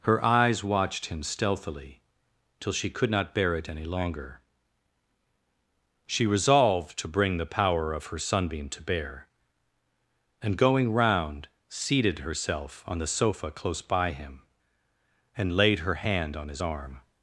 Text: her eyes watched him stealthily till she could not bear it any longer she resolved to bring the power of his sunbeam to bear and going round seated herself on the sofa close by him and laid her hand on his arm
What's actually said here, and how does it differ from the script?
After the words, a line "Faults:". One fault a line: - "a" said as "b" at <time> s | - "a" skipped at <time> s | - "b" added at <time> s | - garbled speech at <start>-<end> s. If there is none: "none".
her eyes watched him stealthily till she could not bear it any longer she resolved to bring the power of her sunbeam to bear and going round seated herself on the sofa close by him and laid her hand on his arm
Faults:
- "his" said as "her" at 8.1 s